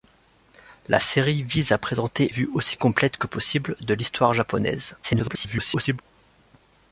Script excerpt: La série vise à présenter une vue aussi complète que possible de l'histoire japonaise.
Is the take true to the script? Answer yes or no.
no